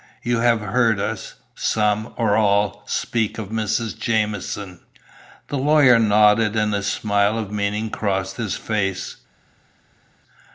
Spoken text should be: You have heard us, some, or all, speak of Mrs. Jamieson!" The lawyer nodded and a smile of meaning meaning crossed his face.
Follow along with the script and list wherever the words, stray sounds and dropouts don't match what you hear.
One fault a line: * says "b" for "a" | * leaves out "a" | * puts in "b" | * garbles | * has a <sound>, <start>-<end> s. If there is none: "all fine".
* leaves out "meaning"